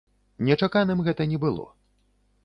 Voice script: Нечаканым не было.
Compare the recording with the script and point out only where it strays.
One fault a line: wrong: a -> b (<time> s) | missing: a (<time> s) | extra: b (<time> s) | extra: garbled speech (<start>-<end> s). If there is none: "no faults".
extra: гэта (1.1 s)